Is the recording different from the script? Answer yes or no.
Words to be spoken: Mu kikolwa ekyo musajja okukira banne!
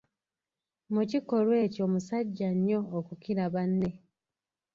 yes